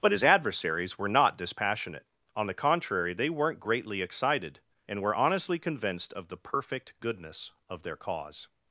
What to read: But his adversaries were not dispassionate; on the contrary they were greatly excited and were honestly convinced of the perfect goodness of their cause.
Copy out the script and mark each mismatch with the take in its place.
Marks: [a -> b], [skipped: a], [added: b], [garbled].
But his adversaries were not dispassionate; on the contrary they [were -> weren't] greatly excited and were honestly convinced of the perfect goodness of their cause.